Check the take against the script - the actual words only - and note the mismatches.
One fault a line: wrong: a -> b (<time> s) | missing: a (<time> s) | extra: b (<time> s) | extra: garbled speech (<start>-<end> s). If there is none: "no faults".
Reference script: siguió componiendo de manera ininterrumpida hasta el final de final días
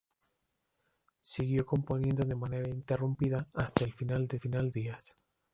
no faults